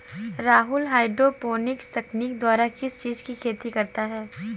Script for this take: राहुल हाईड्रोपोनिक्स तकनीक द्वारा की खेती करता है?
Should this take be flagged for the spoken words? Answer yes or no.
yes